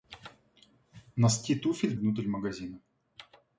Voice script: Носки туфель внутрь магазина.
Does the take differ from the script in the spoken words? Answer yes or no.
no